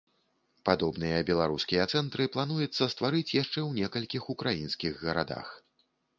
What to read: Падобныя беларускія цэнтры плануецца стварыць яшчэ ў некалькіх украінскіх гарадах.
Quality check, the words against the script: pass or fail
pass